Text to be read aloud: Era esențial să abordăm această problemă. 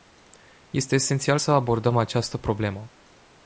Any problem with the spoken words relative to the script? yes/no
yes